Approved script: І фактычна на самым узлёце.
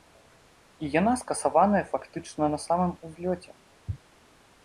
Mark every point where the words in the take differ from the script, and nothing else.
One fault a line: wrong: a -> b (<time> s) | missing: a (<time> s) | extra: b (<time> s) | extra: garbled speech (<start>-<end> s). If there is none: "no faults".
extra: яна скасаваная (1.0 s)